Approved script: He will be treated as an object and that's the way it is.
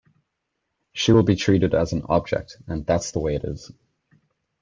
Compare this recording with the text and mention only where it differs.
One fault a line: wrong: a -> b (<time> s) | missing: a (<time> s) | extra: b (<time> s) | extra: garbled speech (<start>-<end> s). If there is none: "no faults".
wrong: He -> She (0.9 s)